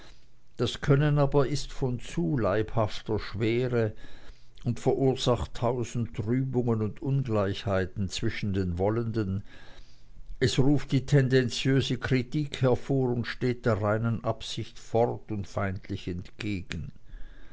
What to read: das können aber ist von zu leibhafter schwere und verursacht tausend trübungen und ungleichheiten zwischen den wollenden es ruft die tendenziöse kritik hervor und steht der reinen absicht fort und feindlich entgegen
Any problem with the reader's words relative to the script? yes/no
no